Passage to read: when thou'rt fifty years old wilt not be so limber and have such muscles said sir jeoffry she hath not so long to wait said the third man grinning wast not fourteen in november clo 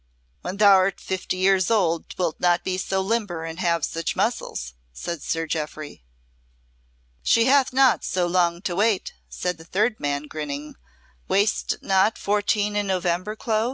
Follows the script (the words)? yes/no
yes